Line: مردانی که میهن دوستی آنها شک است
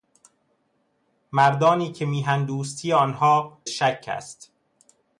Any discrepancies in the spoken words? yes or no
no